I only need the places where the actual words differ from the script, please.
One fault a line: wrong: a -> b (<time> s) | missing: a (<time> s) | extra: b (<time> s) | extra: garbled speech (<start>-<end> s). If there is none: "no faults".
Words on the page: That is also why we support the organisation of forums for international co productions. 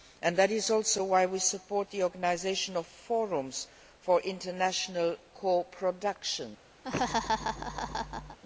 no faults